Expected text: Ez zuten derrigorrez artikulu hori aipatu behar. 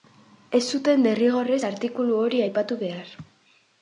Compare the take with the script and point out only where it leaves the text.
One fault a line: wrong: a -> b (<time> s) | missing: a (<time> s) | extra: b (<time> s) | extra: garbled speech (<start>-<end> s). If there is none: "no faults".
no faults